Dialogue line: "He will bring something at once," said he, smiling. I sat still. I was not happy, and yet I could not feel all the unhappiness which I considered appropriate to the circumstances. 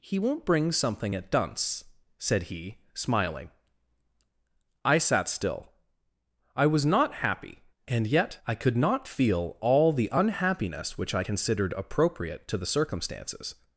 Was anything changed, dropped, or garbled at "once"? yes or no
yes